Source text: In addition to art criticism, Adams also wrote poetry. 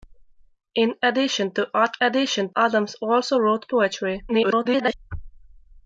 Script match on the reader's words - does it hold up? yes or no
no